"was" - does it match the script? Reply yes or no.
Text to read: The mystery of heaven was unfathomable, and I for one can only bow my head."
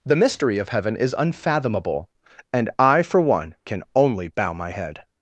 no